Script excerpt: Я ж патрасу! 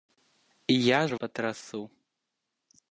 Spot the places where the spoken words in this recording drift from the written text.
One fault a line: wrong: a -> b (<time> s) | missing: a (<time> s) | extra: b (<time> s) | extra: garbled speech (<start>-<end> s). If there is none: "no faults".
no faults